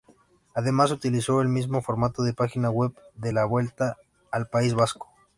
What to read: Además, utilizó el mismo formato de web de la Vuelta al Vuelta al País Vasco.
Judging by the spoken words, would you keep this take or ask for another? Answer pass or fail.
fail